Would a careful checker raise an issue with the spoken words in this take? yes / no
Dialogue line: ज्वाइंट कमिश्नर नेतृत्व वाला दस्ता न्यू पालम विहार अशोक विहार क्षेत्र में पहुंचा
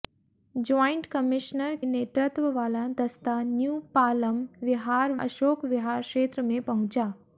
no